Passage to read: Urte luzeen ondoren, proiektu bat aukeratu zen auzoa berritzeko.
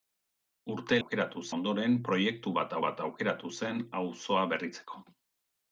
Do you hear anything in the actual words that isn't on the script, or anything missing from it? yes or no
yes